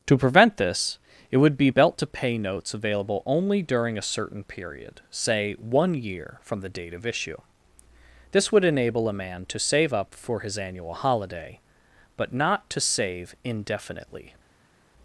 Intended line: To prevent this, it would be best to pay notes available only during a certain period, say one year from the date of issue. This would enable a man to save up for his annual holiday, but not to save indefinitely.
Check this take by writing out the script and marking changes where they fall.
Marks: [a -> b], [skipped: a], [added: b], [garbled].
To prevent this, it would be [best -> belt] to pay notes available only during a certain period, say one year from the date of issue. This would enable a man to save up for his annual holiday, but not to save indefinitely.